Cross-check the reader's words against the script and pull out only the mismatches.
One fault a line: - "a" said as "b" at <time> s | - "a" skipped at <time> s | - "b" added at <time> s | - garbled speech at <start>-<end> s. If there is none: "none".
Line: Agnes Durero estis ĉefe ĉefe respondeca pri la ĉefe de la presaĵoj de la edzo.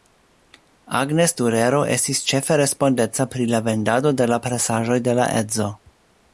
- "ĉefe" skipped at 2.6 s
- "ĉefe" said as "vendado" at 3.7 s